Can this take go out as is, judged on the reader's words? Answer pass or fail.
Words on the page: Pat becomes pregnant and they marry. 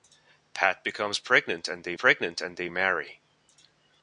fail